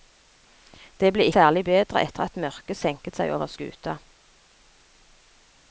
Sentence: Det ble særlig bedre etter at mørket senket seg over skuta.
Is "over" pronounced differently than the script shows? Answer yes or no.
no